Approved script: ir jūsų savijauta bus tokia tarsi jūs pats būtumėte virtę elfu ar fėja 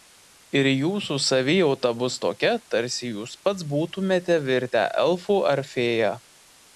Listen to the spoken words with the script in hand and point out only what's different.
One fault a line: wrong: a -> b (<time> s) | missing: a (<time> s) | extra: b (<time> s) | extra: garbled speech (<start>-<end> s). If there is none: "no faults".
no faults